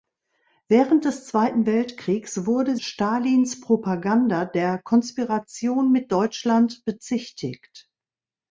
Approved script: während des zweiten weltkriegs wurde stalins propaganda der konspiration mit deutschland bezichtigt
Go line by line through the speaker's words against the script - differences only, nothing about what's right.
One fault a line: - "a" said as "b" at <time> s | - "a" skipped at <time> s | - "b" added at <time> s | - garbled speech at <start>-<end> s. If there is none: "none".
none